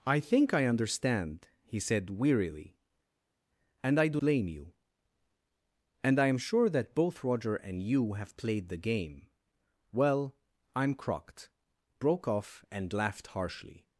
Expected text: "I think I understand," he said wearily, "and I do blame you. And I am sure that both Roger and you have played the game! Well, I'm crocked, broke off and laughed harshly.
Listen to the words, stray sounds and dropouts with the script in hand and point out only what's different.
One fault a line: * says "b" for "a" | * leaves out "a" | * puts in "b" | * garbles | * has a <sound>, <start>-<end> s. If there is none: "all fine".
all fine